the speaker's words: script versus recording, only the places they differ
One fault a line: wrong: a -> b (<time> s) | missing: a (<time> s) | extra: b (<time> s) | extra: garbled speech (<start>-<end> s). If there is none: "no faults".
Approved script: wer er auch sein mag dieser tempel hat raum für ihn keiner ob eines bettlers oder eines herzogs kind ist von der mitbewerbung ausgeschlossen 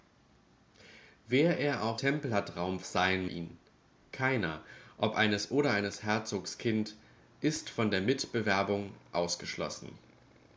missing: sein mag dieser (2.0 s)
wrong: für -> sein (2.8 s)
missing: bettlers (5.5 s)